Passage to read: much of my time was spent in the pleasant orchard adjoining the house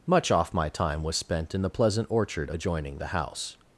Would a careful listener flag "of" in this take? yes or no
yes